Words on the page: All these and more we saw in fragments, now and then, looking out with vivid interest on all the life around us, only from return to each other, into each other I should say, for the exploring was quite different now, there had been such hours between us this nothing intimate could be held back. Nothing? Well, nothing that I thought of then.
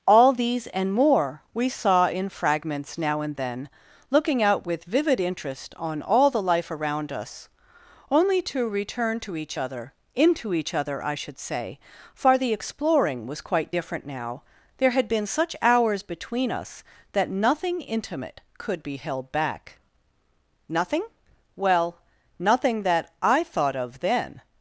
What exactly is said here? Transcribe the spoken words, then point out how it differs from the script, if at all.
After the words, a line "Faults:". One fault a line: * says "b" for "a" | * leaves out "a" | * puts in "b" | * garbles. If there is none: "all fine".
All these and more we saw in fragments, now and then, looking out with vivid interest on all the life around us, only to return to each other, into each other I should say, for the exploring was quite different now, there had been such hours between us that nothing intimate could be held back. Nothing? Well, nothing that I thought of then.
Faults:
* says "to" for "from"
* says "that" for "this"